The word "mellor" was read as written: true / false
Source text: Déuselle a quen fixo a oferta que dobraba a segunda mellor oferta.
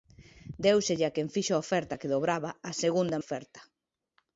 false